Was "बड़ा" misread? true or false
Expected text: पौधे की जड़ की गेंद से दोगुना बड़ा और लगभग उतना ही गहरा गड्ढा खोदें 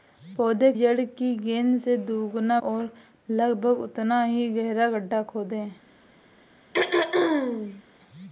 true